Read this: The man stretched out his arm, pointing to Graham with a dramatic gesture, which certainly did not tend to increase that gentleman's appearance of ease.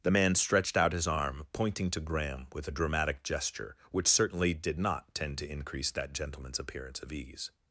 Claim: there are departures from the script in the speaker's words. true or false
false